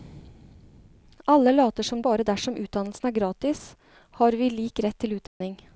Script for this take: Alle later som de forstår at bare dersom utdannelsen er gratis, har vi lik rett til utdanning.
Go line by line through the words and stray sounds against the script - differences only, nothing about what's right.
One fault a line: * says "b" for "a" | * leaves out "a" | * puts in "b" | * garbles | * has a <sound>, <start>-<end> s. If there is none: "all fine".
* leaves out "de forstår at"
* has a dropout, 5.3-5.4 s